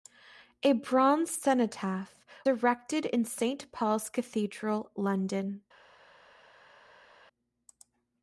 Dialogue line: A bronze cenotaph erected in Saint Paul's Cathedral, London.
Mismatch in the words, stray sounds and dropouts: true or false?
false